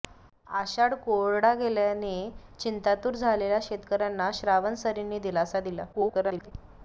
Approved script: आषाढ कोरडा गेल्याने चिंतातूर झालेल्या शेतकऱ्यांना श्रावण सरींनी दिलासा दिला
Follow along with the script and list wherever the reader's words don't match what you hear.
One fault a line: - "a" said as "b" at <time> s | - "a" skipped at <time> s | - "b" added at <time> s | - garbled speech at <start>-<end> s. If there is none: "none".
- garbled speech at 5.9-6.5 s